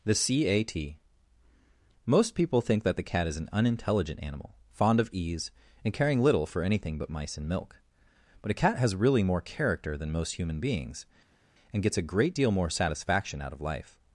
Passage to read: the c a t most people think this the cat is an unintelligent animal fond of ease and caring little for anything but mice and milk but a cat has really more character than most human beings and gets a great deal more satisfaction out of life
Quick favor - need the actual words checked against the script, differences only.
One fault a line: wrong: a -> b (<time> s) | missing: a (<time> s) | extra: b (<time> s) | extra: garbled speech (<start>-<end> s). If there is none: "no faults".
wrong: this -> that (2.8 s)